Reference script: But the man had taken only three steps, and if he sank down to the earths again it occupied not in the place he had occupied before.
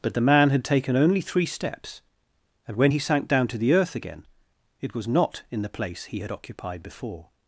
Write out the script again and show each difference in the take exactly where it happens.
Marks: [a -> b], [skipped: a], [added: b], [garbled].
But the man had taken only three steps, and [if -> when] he sank down to the [earths -> earth] again it [occupied -> was] not in the place he had occupied before.